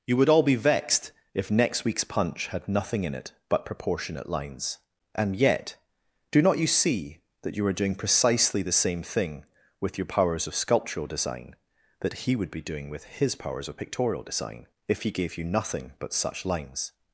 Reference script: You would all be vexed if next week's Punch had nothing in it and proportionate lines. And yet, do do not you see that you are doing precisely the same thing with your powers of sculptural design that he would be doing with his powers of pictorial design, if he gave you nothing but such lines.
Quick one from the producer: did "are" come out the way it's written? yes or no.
yes